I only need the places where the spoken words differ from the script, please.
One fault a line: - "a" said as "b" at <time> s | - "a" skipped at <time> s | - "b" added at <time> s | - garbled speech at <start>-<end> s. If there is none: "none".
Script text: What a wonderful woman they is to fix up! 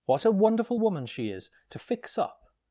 - "they" said as "she" at 1.1 s